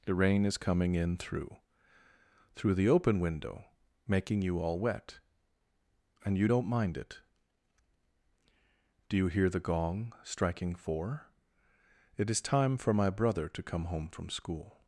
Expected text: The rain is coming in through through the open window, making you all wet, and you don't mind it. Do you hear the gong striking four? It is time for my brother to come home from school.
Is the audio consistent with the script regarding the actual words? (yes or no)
yes